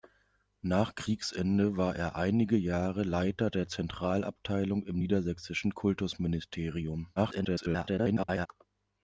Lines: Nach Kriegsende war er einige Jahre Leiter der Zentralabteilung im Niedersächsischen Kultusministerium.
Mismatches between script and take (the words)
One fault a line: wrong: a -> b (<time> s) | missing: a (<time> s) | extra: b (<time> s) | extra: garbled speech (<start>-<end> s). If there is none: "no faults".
extra: garbled speech (7.2-8.5 s)